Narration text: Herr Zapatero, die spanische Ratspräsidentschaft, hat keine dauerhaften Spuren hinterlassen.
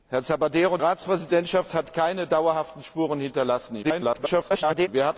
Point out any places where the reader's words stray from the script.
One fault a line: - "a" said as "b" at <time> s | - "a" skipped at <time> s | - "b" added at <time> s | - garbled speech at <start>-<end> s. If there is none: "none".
- "die spanische" skipped at 0.8 s
- garbled speech at 3.8-4.9 s